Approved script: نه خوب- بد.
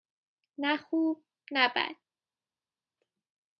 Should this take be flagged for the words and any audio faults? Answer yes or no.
yes